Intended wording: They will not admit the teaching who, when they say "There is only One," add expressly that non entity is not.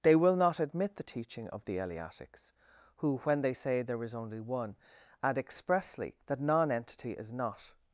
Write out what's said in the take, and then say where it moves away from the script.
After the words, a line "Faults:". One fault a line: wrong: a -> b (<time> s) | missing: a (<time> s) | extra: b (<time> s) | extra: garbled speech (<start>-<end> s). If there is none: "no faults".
They will not admit the teaching of the Eleatics, who, when they say "There is only One," add expressly that non entity is not.
Faults:
extra: of the Eleatics (1.5 s)